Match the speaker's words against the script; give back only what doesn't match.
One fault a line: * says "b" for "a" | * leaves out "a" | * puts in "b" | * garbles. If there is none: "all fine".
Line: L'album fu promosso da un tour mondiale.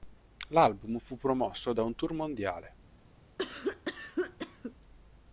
all fine